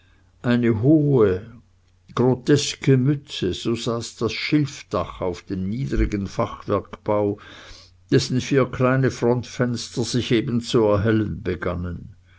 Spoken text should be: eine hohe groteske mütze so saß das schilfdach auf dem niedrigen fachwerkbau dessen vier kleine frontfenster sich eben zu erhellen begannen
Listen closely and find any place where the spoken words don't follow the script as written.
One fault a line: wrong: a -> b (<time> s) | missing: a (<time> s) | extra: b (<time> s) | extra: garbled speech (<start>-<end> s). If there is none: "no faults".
no faults